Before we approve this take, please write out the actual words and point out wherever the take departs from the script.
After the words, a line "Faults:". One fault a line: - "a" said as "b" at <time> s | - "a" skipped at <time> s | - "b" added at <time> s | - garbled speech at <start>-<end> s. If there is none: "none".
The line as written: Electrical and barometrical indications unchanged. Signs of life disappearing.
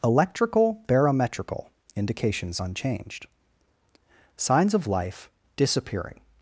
Electrical barometrical indications unchanged. Signs of life disappearing.
Faults:
- "and" skipped at 0.8 s